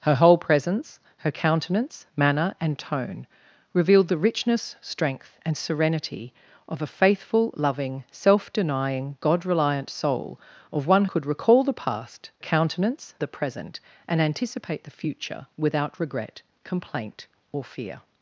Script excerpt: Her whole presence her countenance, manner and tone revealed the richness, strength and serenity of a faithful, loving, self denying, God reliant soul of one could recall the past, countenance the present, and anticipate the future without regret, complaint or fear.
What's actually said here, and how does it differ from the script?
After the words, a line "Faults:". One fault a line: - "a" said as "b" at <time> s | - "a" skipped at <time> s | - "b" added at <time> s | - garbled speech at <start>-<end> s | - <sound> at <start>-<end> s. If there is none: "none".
Her whole presence her countenance, manner and tone revealed the richness, strength and serenity of a faithful, loving, self denying, God reliant soul of one could recall the past, countenance the present, and anticipate the future without regret, complaint or fear.
Faults:
none